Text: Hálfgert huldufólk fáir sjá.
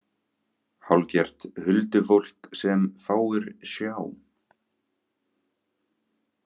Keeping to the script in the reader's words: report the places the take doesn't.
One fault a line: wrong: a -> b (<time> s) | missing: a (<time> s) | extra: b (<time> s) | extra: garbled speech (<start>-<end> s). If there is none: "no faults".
extra: sem (2.6 s)